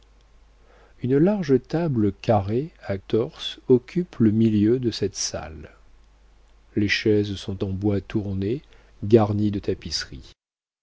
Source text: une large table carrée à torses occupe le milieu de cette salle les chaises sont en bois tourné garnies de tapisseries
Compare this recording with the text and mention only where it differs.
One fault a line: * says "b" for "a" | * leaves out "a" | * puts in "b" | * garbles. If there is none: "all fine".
all fine